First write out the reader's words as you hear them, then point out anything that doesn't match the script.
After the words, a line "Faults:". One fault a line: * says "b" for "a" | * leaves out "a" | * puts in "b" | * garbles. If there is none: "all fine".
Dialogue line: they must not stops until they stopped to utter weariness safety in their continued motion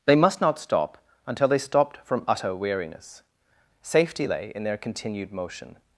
they must not stop until they stopped from utter weariness safety lay in their continued motion
Faults:
* says "stop" for "stops"
* says "from" for "to"
* puts in "lay"